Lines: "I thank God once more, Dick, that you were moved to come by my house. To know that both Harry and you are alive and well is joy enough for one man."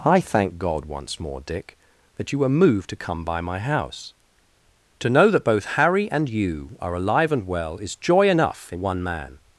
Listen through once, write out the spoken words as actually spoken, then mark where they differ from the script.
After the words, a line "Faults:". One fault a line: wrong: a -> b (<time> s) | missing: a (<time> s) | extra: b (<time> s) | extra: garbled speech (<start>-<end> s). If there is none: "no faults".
"I thank God once more, Dick, that you were moved to come by my house. To know that both Harry and you are alive and well is joy enough in one man."
Faults:
wrong: for -> in (8.7 s)